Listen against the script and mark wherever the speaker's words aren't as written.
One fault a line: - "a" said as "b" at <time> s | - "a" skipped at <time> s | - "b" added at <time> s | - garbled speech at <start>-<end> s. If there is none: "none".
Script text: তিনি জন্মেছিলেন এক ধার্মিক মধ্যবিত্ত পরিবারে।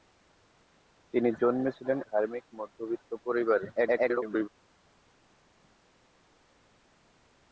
- "এক" skipped at 2.0 s
- garbled speech at 3.7-4.5 s